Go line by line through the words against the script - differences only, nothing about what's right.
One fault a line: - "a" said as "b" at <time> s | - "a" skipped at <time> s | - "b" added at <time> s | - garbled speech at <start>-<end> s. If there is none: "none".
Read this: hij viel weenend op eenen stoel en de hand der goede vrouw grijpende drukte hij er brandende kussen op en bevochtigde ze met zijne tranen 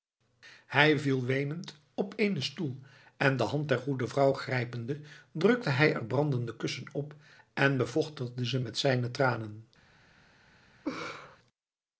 none